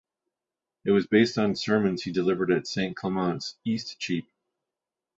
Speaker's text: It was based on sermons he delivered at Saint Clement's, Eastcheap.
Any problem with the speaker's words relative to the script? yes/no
no